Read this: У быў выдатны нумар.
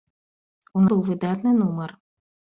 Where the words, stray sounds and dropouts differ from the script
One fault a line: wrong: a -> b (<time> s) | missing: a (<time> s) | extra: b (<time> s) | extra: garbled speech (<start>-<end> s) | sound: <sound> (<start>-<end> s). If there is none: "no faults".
no faults